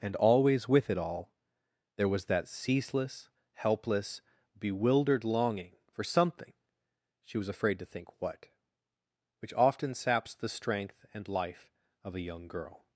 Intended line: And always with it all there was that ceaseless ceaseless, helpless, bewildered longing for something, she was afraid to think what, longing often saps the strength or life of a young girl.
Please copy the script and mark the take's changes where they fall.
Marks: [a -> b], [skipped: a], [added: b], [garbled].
And always with it all there was that ceaseless [skipped: ceaseless,] helpless, bewildered longing for something, she was afraid to think what, [longing -> which] often saps the strength [or -> and] life of a young girl.